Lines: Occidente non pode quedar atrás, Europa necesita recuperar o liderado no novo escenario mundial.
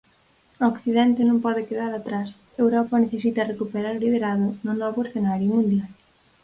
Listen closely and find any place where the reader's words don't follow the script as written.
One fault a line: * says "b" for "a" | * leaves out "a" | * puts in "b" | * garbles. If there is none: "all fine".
all fine